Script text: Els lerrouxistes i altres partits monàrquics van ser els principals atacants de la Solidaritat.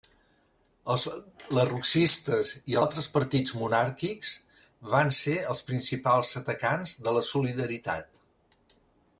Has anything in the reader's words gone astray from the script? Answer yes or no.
no